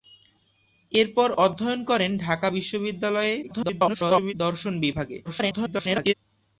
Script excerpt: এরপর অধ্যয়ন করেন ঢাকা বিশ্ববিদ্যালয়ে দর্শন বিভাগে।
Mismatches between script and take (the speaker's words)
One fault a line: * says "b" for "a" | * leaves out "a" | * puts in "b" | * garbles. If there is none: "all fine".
* garbles
* garbles